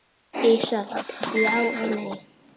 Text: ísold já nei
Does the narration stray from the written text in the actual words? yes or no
yes